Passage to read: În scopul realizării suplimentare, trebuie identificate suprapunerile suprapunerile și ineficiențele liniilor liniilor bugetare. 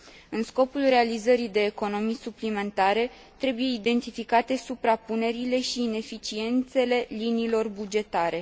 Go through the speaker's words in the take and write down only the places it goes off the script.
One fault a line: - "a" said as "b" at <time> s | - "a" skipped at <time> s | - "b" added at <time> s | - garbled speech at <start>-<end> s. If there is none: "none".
- "de economii" added at 1.5 s
- "suprapunerile" skipped at 5.6 s
- "liniilor" skipped at 7.7 s